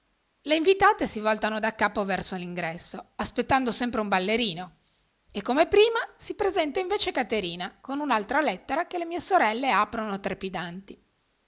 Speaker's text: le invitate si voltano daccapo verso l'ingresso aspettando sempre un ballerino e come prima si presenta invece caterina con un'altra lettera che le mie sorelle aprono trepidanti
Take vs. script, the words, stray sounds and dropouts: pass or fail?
pass